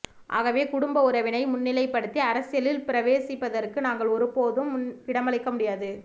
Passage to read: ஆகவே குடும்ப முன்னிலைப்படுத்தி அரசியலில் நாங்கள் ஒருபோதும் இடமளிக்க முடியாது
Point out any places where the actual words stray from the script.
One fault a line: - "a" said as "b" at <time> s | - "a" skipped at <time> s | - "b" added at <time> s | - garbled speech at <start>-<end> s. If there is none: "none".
- "உறவினை" added at 1.0 s
- "பிரவேசிப்பதற்கு" added at 2.9 s